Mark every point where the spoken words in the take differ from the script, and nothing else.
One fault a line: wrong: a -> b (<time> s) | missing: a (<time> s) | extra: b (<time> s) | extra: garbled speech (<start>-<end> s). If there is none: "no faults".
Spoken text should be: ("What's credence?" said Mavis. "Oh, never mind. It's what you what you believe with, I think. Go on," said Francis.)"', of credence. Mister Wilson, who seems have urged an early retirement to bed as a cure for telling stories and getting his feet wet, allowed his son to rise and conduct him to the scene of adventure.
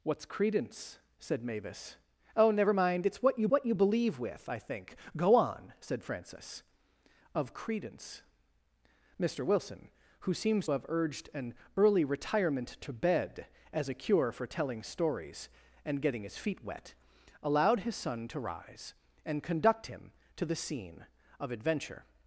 no faults